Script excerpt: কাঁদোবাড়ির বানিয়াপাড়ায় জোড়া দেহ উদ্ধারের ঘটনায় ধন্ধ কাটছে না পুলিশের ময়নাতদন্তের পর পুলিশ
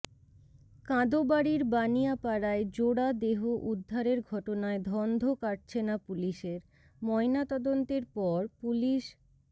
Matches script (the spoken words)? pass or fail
pass